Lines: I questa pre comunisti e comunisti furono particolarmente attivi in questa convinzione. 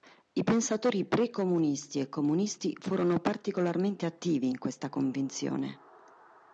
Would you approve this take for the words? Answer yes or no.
no